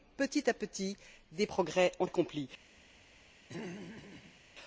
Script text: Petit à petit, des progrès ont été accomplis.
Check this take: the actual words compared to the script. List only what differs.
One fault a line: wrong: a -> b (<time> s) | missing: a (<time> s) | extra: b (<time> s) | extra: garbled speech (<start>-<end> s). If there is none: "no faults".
missing: été (2.0 s)